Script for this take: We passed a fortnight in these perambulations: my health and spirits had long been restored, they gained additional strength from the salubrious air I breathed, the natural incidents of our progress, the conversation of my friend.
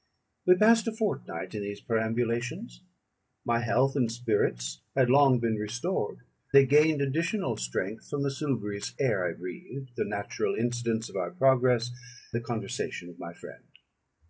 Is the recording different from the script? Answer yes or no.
no